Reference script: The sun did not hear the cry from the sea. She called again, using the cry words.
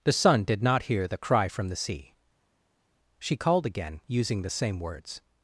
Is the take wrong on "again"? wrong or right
right